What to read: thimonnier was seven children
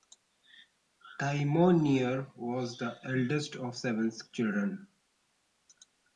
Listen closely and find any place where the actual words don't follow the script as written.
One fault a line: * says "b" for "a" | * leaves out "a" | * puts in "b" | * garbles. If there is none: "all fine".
* puts in "the eldest of"